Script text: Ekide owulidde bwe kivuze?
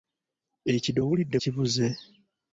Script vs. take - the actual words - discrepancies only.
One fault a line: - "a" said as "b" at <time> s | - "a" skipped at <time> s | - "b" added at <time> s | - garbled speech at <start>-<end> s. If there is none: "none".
- "bwe" skipped at 1.4 s